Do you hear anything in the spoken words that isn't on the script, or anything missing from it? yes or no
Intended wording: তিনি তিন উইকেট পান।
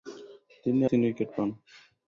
no